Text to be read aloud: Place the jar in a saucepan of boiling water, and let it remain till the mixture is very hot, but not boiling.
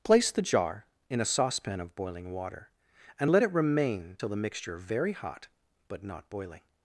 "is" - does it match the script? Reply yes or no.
no